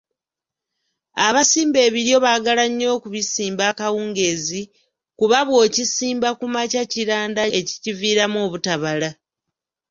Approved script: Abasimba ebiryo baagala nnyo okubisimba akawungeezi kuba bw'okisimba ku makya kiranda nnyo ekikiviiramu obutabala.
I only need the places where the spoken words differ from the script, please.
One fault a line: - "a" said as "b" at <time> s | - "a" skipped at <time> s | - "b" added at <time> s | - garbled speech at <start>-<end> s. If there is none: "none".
- "nnyo" skipped at 7.4 s